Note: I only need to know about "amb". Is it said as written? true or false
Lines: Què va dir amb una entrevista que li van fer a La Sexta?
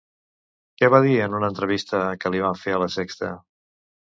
false